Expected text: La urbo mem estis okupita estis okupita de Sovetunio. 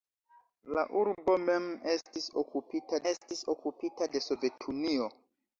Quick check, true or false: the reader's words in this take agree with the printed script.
true